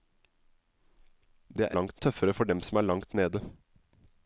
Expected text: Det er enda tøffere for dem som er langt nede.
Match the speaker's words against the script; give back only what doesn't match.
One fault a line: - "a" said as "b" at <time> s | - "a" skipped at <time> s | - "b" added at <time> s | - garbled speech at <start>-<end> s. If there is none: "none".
- "enda" said as "langt" at 1.7 s